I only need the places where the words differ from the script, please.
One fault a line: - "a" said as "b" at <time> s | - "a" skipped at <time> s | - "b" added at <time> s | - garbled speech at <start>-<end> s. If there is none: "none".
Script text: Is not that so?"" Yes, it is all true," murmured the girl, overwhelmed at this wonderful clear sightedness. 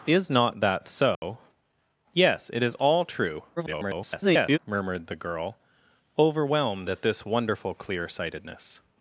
- garbled speech at 3.6-4.6 s